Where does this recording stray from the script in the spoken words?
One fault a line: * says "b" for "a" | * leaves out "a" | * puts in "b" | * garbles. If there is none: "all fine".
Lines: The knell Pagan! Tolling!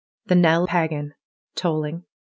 all fine